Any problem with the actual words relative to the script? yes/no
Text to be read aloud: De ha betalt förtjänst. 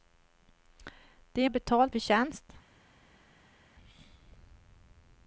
no